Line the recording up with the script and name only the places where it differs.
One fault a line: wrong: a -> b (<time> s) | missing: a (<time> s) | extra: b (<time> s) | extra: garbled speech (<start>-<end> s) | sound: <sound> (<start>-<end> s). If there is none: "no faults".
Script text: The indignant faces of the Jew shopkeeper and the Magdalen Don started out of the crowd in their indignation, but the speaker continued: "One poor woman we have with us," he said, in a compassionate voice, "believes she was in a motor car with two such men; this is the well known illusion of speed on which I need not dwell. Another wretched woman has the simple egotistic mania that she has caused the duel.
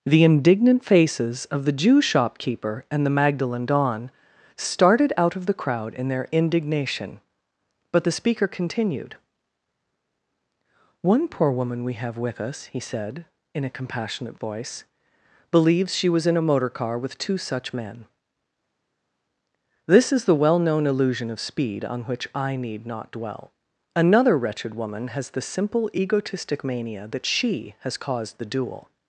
no faults